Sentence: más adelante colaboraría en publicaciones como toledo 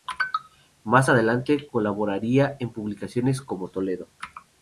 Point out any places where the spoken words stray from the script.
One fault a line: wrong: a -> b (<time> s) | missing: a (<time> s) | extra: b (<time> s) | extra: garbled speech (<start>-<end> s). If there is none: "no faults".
no faults